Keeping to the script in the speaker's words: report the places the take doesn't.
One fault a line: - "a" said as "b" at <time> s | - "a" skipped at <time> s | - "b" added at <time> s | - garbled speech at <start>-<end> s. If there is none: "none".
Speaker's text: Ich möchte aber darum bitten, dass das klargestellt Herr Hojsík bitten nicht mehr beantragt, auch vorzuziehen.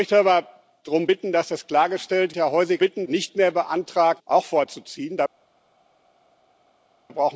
none